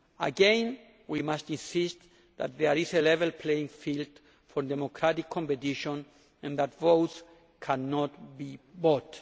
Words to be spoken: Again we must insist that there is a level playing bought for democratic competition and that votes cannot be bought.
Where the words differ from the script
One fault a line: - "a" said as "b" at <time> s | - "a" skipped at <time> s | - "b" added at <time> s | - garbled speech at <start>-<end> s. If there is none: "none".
- "bought" said as "field" at 3.7 s